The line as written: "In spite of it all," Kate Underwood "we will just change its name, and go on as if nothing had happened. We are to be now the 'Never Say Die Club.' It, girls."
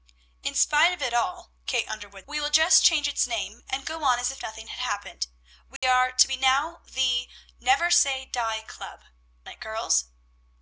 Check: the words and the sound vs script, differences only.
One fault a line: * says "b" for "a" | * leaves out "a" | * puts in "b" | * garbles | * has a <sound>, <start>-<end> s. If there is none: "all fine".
* has a dropout, 5.8-5.8 s